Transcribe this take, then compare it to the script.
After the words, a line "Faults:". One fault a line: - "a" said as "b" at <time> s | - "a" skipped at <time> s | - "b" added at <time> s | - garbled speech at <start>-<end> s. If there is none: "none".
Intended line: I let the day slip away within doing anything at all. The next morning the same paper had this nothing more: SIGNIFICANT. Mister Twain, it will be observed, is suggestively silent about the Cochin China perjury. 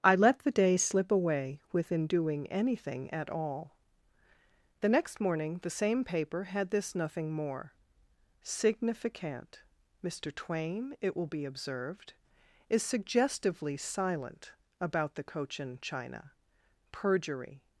I let the day slip away within doing anything at all. The next morning the same paper had this nothing more: SIGNIFICANT. Mister Twain, it will be observed, is suggestively silent about the Cochin China perjury.
Faults:
none